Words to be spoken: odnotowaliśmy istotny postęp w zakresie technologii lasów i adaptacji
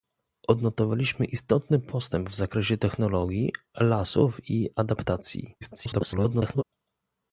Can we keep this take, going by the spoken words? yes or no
no